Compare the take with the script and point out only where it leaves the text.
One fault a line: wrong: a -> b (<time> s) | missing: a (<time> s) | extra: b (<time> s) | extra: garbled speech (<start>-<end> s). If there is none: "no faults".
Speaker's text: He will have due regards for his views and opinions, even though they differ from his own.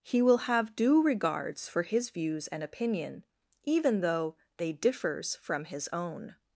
wrong: opinions -> opinion (2.6 s)
wrong: differ -> differs (4.7 s)